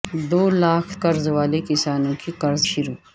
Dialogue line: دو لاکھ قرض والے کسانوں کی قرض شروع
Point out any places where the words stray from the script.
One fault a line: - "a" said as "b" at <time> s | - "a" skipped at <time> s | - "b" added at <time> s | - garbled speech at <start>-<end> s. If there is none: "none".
none